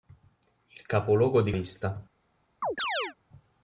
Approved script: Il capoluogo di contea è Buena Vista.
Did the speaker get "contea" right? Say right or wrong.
wrong